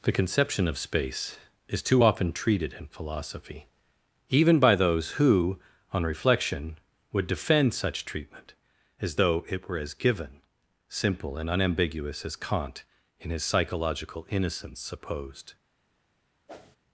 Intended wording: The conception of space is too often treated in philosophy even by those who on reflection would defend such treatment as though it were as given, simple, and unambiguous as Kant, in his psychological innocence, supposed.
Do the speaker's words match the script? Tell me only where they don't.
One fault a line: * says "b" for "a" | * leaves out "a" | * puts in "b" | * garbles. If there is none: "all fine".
all fine